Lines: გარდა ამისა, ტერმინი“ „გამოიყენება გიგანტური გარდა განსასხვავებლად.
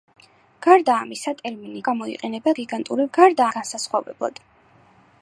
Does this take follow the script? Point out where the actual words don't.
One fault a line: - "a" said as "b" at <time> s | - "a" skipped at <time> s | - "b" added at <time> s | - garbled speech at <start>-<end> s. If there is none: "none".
none